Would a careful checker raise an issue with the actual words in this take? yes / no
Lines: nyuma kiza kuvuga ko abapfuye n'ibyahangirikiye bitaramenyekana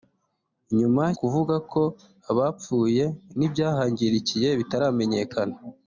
yes